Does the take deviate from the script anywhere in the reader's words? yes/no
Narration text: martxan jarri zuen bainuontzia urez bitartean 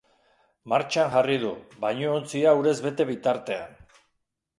yes